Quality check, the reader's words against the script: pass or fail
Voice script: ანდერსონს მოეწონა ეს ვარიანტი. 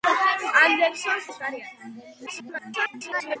fail